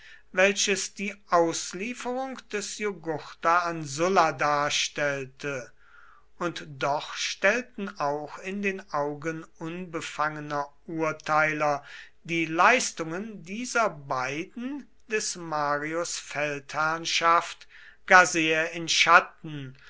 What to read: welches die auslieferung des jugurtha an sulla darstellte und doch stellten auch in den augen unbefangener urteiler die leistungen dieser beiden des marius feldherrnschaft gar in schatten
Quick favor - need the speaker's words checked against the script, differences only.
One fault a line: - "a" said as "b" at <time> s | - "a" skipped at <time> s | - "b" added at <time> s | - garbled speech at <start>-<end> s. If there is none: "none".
- "sehr" added at 18.2 s